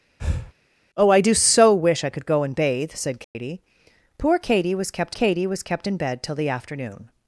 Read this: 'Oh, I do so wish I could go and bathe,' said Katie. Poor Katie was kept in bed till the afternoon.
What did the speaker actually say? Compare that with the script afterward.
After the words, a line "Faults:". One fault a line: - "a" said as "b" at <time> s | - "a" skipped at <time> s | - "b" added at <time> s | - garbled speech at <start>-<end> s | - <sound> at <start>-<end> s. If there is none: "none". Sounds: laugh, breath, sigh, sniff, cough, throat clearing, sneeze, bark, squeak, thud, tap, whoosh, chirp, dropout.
'Oh, I do so wish I could go and bathe,' said Katie. Poor Katie was kept Katie was kept in bed till the afternoon.
Faults:
- breath at 0.2-0.5 s
- dropout at 3.2-3.4 s
- "Katie was kept" added at 5.1 s